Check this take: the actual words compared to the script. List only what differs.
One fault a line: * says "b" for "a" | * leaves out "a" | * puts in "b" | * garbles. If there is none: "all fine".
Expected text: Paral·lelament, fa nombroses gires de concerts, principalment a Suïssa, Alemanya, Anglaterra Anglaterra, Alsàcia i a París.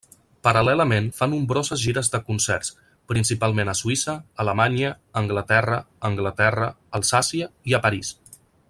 all fine